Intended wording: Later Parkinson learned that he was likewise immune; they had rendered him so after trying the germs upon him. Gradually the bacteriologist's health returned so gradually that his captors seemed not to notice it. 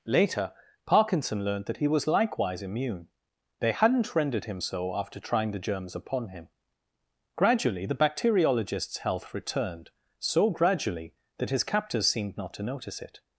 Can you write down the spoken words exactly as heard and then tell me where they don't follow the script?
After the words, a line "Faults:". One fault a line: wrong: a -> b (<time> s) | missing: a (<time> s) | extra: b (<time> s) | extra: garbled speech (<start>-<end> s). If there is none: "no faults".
Later Parkinson learned that he was likewise immune; they hadn't rendered him so after trying the germs upon him. Gradually the bacteriologist's health returned so gradually that his captors seemed not to notice it.
Faults:
wrong: had -> hadn't (3.7 s)